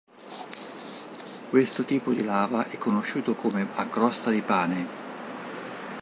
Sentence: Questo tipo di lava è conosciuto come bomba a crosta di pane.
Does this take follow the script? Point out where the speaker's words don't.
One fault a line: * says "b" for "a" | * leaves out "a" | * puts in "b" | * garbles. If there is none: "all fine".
* leaves out "bomba"